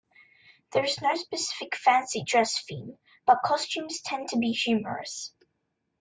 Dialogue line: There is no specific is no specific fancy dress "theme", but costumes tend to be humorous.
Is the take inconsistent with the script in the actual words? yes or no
yes